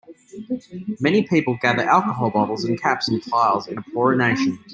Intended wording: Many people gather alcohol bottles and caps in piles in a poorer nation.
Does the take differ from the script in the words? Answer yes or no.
no